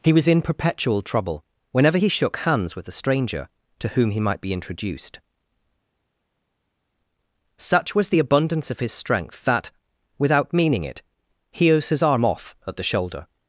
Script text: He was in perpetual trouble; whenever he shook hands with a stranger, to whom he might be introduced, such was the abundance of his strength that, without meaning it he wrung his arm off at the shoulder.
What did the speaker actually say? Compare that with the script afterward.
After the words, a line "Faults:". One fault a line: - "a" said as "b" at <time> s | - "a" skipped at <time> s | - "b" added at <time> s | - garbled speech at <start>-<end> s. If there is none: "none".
He was in perpetual trouble; whenever he shook hands with a stranger, to whom he might be introduced, such was the abundance of his strength that, without meaning it he his arm off at the shoulder.
Faults:
- "wrung" skipped at 11.7 s